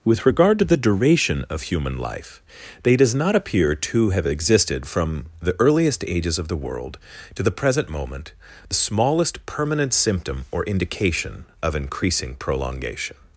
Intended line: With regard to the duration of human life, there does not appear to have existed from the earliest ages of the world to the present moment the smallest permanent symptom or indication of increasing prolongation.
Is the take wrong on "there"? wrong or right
wrong